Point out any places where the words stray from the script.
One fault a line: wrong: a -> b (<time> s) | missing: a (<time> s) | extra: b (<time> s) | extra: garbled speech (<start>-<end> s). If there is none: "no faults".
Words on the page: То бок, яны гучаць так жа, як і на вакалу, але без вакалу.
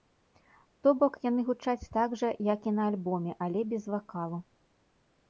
wrong: вакалу -> альбоме (2.9 s)